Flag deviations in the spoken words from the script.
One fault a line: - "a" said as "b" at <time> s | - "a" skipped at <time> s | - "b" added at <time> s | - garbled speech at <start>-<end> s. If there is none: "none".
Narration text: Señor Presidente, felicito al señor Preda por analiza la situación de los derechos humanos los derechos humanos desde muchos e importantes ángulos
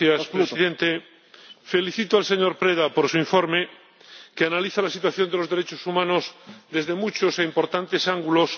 - "su informe que" added at 3.0 s
- "los derechos humanos" skipped at 6.3 s